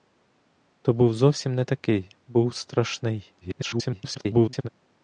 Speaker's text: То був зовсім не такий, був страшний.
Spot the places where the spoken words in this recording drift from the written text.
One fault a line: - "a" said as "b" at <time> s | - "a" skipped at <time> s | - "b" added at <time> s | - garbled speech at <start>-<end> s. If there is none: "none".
- garbled speech at 3.4-4.7 s